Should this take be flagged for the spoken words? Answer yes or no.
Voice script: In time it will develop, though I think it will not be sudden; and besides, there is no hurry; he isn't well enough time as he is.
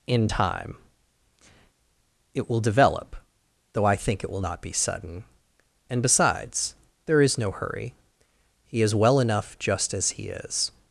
yes